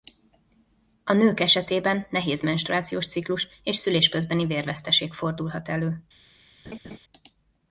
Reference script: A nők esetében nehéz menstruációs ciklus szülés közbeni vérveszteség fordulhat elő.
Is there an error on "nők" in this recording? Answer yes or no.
no